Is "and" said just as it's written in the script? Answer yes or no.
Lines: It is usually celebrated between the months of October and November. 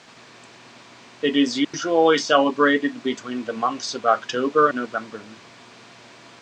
no